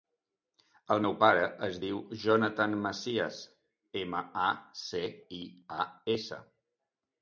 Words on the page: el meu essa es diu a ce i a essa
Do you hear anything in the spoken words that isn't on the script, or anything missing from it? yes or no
yes